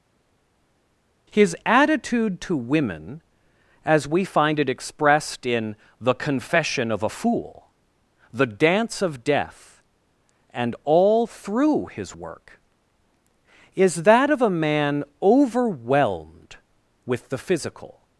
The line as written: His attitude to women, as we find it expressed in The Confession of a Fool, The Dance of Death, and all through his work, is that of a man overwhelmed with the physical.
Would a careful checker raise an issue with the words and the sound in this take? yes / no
no